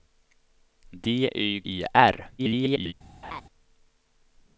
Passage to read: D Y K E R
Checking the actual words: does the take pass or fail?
fail